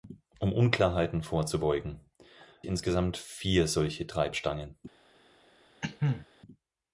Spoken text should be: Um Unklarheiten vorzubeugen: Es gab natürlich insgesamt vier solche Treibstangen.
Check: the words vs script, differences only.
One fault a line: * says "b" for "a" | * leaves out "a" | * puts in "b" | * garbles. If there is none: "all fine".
* leaves out "Es gab natürlich"